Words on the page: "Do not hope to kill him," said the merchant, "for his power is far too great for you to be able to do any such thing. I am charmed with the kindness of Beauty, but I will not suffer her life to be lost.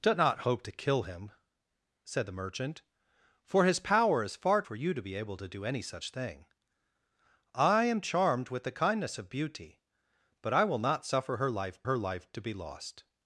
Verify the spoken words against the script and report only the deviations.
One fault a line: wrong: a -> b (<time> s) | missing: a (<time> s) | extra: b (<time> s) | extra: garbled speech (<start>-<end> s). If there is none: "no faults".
missing: too great (4.6 s)
extra: her life (11.8 s)